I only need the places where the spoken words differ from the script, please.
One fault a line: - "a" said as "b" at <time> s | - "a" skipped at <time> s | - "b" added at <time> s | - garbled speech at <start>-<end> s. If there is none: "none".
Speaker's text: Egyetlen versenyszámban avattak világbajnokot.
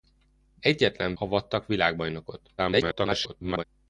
- "versenyszámban" skipped at 1.1 s
- garbled speech at 2.6-3.6 s